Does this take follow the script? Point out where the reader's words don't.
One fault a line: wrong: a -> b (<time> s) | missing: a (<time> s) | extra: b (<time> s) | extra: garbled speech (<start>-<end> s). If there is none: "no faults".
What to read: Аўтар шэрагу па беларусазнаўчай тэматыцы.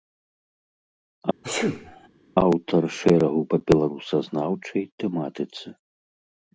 no faults